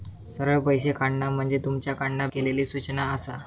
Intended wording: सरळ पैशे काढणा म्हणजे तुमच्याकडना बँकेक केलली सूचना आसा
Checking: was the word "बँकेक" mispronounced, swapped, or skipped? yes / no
yes